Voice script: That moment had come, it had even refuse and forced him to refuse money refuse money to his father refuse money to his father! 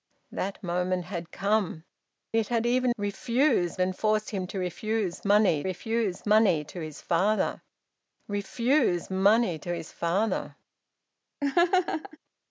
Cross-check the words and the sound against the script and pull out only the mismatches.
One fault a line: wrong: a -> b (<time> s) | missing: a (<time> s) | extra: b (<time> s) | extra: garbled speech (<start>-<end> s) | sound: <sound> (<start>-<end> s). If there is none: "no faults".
sound: laugh (11.4-12.2 s)